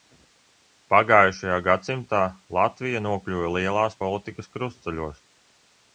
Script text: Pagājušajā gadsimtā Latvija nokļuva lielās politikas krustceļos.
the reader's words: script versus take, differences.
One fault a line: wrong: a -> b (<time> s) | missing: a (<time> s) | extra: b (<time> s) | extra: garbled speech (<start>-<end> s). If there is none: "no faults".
no faults